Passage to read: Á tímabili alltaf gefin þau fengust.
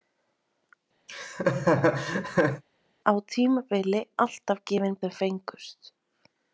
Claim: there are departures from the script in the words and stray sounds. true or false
true